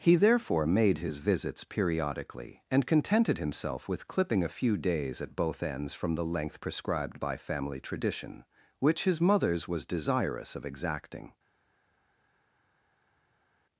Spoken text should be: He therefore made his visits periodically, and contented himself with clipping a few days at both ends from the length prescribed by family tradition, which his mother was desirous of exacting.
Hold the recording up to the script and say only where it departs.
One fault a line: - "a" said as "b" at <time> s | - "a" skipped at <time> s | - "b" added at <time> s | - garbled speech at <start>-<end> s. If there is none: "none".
- "mother" said as "mothers" at 9.2 s